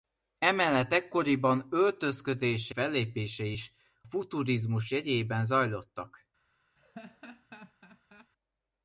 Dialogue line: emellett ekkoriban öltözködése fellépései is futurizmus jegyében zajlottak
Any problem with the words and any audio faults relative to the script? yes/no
yes